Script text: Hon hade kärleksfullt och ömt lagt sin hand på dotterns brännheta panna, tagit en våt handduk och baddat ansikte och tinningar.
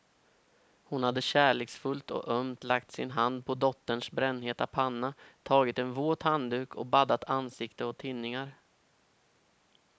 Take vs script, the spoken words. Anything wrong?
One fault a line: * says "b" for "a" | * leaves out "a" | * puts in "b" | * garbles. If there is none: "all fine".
all fine